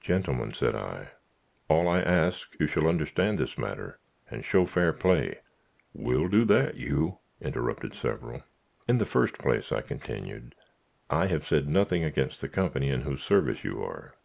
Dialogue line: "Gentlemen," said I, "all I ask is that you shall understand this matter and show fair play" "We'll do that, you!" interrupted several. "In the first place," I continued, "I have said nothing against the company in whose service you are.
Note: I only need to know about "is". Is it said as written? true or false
false